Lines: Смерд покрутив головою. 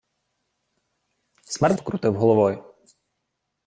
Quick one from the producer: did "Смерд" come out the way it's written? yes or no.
yes